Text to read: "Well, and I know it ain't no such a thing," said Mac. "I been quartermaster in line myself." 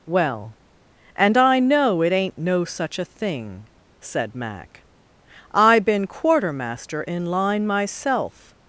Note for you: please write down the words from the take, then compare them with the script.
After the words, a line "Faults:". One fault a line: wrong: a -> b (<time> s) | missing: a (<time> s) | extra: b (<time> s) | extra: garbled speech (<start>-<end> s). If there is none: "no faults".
"Well, and I know it ain't no such a thing," said Mac. "I been quartermaster in line myself."
Faults:
no faults